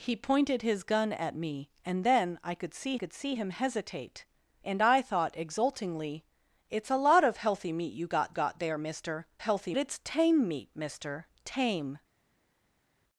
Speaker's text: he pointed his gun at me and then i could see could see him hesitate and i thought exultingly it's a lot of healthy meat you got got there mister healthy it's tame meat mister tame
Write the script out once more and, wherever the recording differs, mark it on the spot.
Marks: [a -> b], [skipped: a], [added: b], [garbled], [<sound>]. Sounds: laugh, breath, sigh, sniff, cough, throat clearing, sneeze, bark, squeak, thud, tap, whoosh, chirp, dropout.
he pointed his gun at me and then i could see could see him hesitate and i thought exultingly it's a lot of healthy meat you got got there mister healthy it's tame meat mister tame